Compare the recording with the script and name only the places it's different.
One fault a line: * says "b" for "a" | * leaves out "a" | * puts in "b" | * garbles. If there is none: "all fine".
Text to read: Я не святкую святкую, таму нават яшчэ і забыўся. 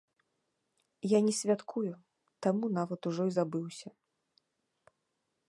* leaves out "святкую"
* says "ужо" for "яшчэ"